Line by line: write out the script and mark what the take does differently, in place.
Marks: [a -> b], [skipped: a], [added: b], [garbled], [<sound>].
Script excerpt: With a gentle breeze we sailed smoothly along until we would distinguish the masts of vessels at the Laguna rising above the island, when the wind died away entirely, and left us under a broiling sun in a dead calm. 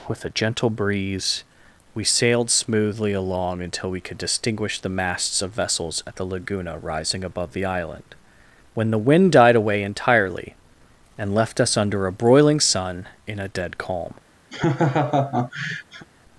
With a gentle breeze we sailed smoothly along until we [would -> could] distinguish the masts of vessels at the Laguna rising above the island, when the wind died away entirely, and left us under a broiling sun in a dead calm. [laugh]